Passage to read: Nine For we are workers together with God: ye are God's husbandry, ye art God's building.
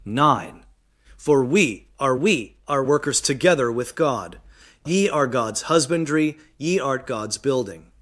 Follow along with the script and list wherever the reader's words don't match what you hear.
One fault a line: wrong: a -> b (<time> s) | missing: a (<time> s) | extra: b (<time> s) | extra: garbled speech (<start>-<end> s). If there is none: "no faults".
extra: we are (2.1 s)